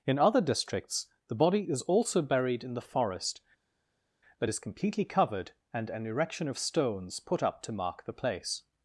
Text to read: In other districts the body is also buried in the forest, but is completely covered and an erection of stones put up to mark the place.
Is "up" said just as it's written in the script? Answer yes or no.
yes